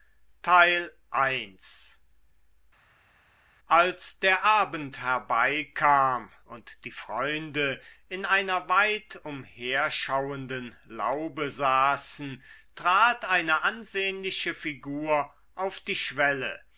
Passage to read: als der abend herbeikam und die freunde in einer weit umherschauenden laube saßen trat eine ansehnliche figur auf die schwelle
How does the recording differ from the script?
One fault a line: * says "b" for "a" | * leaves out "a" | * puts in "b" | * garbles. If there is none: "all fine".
all fine